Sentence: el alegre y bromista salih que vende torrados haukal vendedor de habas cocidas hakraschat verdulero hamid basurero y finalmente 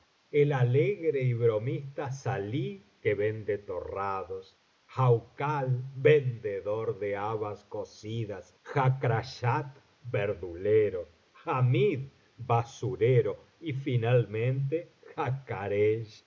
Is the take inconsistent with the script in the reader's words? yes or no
no